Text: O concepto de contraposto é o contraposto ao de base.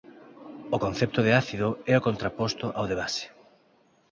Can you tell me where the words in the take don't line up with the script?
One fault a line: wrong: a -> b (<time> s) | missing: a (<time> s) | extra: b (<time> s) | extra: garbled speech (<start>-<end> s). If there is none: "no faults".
wrong: contraposto -> ácido (1.4 s)